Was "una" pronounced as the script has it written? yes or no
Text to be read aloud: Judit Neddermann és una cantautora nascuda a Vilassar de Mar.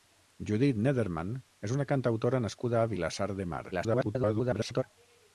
yes